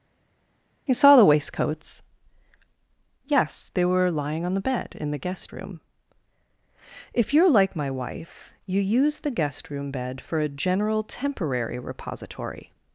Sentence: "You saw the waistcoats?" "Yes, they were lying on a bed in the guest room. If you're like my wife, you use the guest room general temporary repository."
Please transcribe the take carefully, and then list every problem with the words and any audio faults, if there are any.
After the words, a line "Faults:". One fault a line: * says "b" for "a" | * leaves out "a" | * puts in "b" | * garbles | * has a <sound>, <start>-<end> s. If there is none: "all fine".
"You saw the waistcoats?" "Yes, they were lying on the bed in the guest room. If you're like my wife, you use the guest room bed for a general temporary repository."
Faults:
* says "the" for "a"
* puts in "bed for a"